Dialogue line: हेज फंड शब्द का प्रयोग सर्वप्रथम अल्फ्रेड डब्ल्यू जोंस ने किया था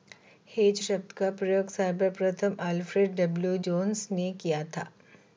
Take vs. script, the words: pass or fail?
fail